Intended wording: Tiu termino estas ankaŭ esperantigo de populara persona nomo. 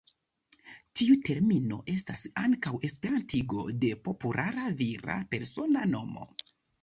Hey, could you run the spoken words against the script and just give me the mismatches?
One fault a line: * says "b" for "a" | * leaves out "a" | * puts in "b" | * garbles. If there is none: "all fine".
* puts in "vira"